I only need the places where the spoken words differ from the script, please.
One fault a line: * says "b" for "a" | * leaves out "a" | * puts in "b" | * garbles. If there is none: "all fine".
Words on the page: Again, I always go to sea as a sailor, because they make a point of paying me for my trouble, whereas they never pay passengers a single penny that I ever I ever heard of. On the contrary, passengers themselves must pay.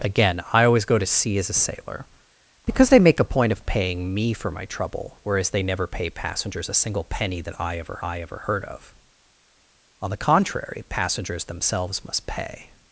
all fine